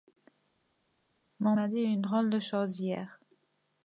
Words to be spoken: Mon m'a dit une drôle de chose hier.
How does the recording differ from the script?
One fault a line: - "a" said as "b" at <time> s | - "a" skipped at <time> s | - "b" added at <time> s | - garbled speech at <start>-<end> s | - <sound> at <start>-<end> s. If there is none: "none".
none